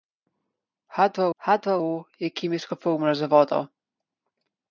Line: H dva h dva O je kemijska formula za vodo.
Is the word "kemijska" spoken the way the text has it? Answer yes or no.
yes